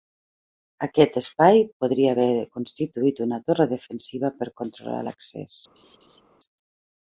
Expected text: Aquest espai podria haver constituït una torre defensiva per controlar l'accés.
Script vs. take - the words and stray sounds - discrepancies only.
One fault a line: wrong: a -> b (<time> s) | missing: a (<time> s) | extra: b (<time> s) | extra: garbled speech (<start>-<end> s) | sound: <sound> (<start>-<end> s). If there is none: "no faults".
sound: laugh (5.8-6.2 s)